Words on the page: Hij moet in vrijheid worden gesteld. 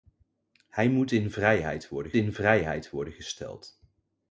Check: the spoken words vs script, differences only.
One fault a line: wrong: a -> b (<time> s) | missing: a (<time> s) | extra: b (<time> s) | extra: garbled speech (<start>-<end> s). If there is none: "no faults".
extra: in vrijheid worden (2.1 s)